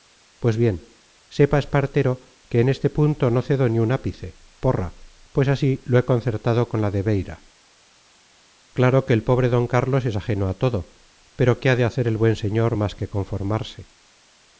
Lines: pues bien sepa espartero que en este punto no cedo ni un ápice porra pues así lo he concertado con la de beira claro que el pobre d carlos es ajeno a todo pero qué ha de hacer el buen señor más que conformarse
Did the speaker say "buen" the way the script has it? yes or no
yes